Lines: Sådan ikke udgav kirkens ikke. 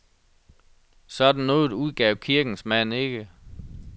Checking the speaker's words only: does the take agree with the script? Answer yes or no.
no